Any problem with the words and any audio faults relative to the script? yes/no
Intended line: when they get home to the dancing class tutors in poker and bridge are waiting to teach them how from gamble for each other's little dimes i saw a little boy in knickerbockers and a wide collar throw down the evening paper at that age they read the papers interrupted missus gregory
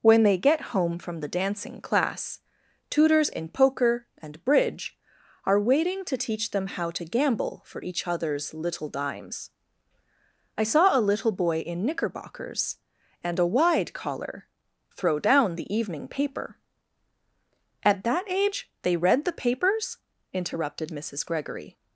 yes